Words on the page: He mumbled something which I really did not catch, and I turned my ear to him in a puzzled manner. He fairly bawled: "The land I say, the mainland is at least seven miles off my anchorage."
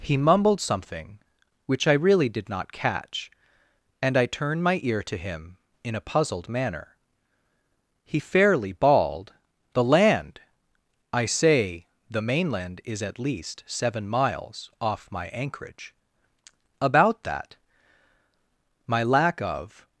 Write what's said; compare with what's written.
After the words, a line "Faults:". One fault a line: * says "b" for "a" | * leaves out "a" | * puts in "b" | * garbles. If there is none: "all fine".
He mumbled something which I really did not catch, and I turned my ear to him in a puzzled manner. He fairly bawled: "The land I say, the mainland is at least seven miles off my anchorage." "About that." My lack of
Faults:
* puts in "About that My lack of"